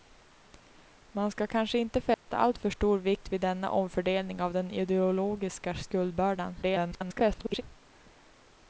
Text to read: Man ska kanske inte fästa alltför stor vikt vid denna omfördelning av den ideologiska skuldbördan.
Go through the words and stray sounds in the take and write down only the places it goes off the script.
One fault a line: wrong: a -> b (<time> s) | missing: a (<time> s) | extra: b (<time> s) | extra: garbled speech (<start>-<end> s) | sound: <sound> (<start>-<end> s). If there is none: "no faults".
sound: dropout (2.1-2.3 s)
extra: garbled speech (6.6-7.6 s)